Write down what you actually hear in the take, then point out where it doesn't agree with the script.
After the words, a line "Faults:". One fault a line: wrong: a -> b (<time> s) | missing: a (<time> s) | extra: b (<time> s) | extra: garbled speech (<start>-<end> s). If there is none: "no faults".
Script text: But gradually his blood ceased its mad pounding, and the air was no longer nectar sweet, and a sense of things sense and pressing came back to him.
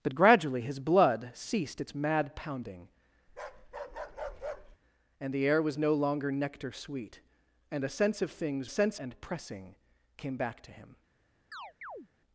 But gradually his blood ceased its mad pounding, and the air was no longer nectar sweet, and a sense of things sense and pressing came back to him.
Faults:
no faults